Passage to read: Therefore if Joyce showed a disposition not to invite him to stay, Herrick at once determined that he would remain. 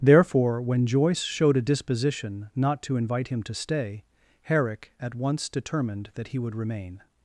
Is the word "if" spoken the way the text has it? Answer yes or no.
no